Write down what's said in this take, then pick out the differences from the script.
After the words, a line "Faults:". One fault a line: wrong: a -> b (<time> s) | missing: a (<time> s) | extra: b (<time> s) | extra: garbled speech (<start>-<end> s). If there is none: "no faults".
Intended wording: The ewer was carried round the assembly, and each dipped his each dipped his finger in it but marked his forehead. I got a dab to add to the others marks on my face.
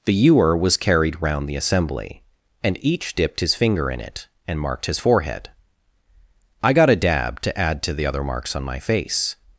The ewer was carried round the assembly, and each dipped his finger in it and marked his forehead. I got a dab to add to the other marks on my face.
Faults:
missing: each dipped his (3.5 s)
wrong: but -> and (4.5 s)
wrong: others -> other (8.1 s)